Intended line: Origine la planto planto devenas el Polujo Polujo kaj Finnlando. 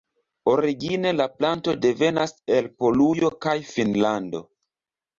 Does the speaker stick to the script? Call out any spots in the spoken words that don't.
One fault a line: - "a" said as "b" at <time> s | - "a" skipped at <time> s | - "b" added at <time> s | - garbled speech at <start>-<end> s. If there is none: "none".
- "planto" skipped at 1.8 s
- "Polujo" skipped at 3.3 s